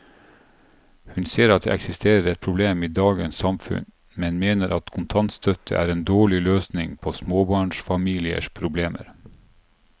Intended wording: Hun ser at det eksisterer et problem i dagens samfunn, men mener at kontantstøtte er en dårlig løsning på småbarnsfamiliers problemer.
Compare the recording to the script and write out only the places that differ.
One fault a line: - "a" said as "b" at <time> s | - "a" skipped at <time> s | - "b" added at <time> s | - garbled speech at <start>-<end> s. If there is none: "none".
none